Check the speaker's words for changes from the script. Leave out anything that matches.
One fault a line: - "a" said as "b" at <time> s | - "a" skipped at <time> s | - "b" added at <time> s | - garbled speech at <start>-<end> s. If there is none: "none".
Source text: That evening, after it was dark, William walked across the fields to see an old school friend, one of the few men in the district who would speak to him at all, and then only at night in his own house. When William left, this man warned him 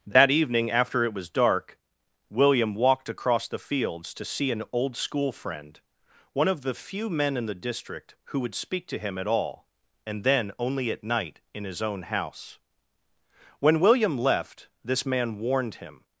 none